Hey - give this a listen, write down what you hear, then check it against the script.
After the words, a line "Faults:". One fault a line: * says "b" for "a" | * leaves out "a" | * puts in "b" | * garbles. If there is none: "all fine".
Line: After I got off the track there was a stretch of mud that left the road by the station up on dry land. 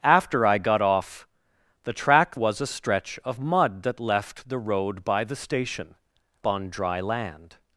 After I got off the track was a stretch of mud that left the road by the station on dry land.
Faults:
* leaves out "there"
* leaves out "up"